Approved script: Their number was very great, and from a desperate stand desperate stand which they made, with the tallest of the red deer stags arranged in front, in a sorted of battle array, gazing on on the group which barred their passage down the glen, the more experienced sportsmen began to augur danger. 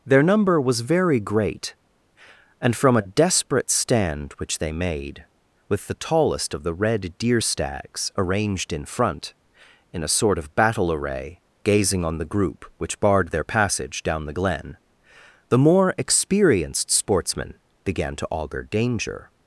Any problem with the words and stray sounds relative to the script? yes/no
yes